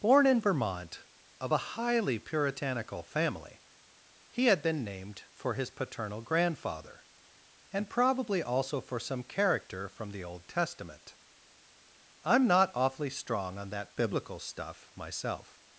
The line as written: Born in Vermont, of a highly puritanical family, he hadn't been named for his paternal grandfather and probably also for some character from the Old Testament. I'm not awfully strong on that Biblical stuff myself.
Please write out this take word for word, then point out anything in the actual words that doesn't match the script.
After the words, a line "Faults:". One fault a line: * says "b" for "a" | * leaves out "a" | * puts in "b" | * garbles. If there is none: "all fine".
Born in Vermont, of a highly puritanical family, he had been named for his paternal grandfather and probably also for some character from the Old Testament. I'm not awfully strong on that Biblical stuff myself.
Faults:
* says "had" for "hadn't"